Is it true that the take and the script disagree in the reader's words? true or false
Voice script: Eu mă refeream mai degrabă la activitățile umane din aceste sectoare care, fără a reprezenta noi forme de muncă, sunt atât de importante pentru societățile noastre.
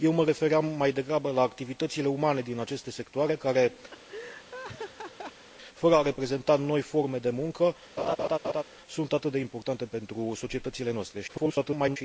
true